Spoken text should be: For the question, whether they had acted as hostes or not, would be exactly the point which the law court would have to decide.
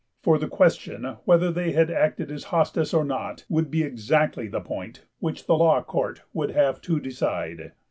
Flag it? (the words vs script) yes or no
no